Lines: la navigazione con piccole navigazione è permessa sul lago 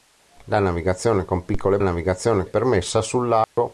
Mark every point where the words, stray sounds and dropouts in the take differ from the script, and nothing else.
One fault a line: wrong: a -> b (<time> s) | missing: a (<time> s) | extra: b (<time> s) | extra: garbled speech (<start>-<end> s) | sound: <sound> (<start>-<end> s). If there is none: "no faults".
sound: dropout (3.4-3.6 s)